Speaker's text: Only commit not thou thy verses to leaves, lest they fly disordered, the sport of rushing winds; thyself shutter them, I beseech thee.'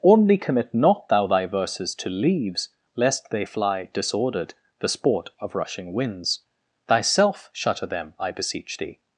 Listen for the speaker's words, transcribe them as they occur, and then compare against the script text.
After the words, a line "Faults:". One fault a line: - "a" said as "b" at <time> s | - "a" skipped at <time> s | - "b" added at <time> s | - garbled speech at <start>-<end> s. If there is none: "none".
Only commit not thou thy verses to leaves, lest they fly disordered, the sport of rushing winds; thyself shutter them, I beseech thee.'
Faults:
none